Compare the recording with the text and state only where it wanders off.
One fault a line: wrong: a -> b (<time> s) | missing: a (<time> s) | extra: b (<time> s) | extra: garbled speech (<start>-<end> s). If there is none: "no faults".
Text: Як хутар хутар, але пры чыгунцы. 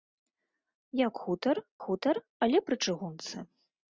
no faults